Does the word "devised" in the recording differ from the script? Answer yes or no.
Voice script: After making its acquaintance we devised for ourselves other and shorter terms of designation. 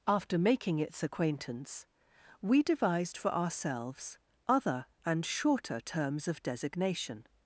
no